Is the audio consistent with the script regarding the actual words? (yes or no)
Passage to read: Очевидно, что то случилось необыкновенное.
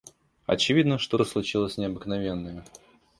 yes